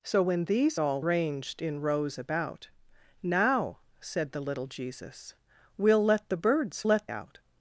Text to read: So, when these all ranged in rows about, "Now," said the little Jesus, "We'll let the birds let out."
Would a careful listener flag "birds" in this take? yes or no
no